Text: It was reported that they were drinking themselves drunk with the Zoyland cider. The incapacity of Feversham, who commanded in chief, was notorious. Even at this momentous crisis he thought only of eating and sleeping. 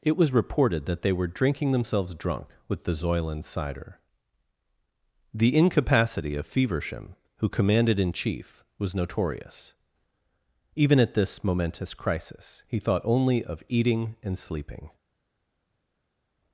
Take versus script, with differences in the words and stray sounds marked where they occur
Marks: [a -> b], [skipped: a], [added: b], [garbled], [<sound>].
It was reported that they were drinking themselves drunk with the Zoyland cider. The incapacity of Feversham, who commanded in chief, was notorious. Even at this momentous crisis he thought only of eating and sleeping.